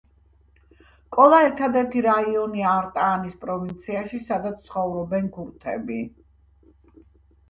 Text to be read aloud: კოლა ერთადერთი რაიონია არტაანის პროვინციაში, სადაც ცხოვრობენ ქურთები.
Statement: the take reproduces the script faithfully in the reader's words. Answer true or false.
true